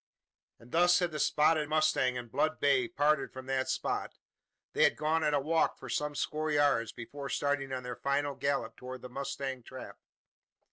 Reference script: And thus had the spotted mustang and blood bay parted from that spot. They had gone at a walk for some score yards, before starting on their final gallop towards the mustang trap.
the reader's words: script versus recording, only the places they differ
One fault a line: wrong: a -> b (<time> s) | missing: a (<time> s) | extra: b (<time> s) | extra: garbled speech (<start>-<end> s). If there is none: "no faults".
no faults